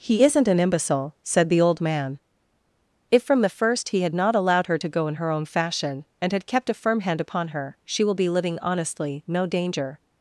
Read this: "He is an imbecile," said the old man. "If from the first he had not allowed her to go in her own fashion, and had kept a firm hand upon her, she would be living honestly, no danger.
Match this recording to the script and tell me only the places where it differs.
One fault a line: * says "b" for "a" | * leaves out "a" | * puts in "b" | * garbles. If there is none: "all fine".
* says "isn't" for "is"
* says "will" for "would"